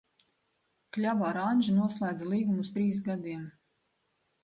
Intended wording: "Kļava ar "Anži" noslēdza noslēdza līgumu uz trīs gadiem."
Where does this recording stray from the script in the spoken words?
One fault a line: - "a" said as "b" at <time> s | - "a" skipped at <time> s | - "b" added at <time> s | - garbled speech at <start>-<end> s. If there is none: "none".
- "noslēdza" skipped at 2.3 s